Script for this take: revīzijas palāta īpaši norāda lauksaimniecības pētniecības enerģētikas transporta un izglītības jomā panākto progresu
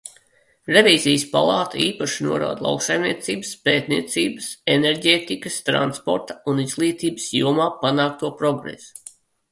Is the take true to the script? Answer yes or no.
yes